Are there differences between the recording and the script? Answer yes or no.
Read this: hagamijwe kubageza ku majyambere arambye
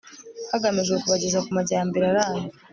no